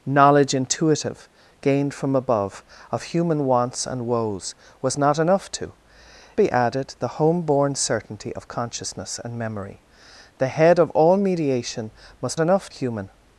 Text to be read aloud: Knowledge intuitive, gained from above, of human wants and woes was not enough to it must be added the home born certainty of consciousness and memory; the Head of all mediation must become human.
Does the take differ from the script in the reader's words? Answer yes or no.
yes